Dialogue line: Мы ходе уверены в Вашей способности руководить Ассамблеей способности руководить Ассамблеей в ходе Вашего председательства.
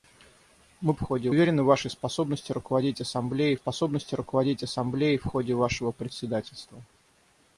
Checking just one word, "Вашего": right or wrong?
right